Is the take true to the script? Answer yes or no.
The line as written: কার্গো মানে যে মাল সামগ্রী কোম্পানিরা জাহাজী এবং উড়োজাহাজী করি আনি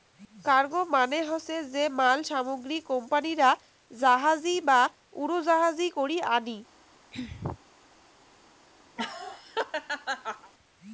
no